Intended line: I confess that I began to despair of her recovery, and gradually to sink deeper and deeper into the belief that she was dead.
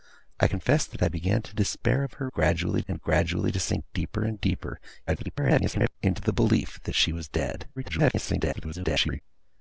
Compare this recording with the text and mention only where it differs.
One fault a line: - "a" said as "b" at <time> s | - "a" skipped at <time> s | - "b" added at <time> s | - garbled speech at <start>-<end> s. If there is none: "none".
- "recovery" said as "gradually" at 2.3 s
- garbled speech at 5.1-6.0 s
- garbled speech at 7.8-9.2 s